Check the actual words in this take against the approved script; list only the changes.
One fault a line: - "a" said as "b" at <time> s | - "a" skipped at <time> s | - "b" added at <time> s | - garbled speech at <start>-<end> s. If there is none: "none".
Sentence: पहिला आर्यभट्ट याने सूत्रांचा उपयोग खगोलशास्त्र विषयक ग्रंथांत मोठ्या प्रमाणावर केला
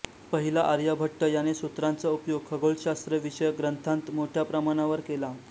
none